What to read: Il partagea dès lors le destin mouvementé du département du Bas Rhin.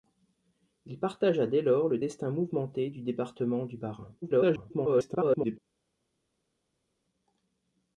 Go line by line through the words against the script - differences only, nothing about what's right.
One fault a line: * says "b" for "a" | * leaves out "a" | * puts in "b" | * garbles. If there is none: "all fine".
* garbles